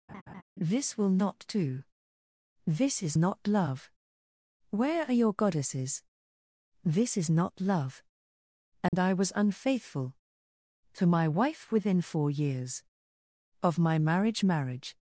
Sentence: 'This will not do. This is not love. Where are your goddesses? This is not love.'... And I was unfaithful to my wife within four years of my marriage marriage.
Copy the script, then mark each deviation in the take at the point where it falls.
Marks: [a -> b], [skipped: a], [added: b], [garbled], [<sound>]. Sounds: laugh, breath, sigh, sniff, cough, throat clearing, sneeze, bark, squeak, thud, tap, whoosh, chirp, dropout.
[laugh] 'This will not do. This is not love. Where are your goddesses? This is not love.'... And [dropout] I was unfaithful to my wife within four years of my marriage marriage.